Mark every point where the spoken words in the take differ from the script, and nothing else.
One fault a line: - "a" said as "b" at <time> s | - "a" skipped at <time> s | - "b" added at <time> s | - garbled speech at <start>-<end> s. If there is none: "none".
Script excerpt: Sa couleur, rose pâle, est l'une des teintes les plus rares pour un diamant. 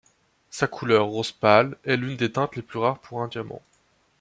none